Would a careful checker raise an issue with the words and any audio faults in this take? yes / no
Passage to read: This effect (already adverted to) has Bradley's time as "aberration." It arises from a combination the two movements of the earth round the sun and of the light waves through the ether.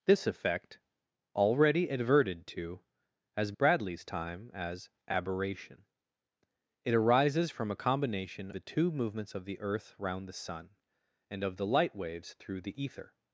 no